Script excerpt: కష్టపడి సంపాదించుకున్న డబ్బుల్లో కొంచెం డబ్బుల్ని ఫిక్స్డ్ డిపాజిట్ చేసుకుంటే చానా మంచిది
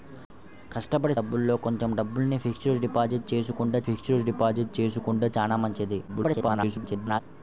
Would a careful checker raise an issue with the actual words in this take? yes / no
yes